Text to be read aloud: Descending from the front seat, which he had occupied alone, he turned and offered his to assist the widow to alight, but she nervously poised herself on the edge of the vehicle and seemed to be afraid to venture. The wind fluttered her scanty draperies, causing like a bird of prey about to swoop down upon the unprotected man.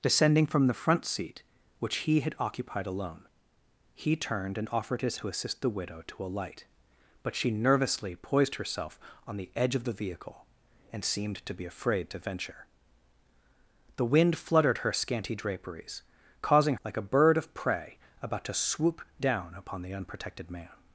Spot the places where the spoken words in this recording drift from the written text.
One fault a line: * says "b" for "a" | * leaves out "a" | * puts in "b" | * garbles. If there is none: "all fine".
all fine